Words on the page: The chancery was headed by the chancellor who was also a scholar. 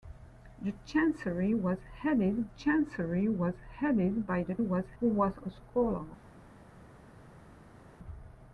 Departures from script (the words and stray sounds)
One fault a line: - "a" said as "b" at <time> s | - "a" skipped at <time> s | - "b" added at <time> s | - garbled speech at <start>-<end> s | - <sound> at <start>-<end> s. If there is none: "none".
- "chancery was headed" added at 2.5 s
- "chancellor" said as "was" at 4.6 s
- "also" skipped at 5.4 s